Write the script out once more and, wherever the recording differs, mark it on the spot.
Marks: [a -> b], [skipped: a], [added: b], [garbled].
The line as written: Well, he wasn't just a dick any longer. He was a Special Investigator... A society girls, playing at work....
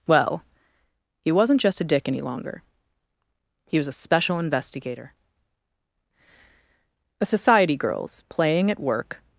Well, he wasn't just a dick any longer. He was a Special Investigator... A society girls, playing at work....